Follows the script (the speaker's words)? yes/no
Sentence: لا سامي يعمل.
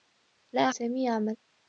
yes